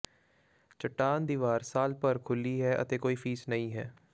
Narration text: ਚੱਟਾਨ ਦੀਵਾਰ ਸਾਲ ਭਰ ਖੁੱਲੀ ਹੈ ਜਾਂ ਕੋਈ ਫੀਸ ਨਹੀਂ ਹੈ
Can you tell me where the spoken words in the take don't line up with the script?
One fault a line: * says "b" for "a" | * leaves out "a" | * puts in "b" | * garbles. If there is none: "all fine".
* says "ਅਤੇ" for "ਜਾਂ"